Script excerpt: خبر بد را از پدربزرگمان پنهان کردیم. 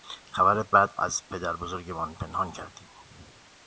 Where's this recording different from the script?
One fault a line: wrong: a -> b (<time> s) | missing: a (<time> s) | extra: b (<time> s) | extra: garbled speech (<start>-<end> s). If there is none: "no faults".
missing: را (0.9 s)